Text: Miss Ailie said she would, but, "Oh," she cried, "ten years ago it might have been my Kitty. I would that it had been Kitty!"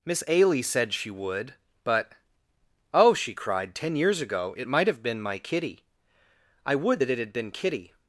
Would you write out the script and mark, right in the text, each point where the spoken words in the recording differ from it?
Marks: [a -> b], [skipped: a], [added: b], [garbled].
Miss Ailie said she would, but, "Oh," she cried, "ten years ago it might have been my Kitty. I would that it had been Kitty!"